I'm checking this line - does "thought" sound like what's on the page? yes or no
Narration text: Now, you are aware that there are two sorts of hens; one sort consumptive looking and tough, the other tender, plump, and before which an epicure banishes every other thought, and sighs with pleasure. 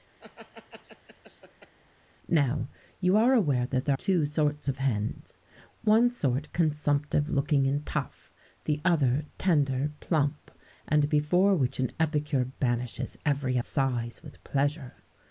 no